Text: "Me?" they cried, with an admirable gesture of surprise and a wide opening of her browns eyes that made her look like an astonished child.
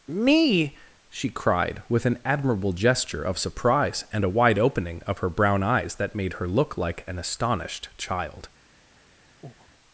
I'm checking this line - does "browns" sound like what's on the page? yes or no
no